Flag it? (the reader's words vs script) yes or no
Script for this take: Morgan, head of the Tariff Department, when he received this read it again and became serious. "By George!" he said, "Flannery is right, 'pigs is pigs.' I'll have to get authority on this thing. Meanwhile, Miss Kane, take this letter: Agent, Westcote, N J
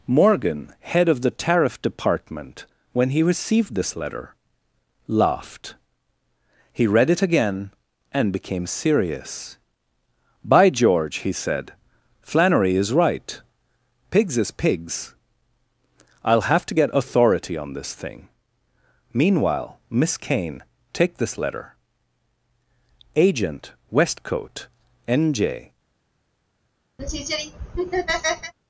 yes